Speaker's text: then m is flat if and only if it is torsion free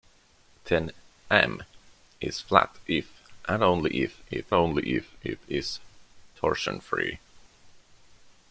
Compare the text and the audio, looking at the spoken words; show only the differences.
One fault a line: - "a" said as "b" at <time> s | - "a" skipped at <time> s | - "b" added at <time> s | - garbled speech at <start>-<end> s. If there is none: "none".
- "only if it" added at 4.5 s